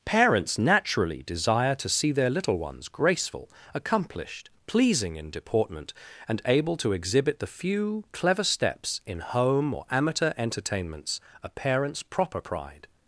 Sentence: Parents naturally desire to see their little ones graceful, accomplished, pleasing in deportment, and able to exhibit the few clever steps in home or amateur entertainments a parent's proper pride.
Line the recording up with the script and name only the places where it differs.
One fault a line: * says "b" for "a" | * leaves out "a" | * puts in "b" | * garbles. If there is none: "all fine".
all fine